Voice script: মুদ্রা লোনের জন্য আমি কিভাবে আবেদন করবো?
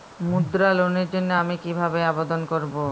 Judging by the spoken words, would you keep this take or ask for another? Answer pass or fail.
pass